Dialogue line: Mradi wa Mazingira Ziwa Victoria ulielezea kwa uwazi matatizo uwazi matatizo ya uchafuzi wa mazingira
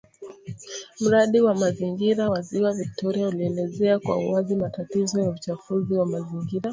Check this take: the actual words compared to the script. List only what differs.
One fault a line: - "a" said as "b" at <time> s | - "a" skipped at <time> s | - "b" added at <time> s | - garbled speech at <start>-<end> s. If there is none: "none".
- "wa" added at 2.3 s
- "uwazi matatizo" skipped at 5.2 s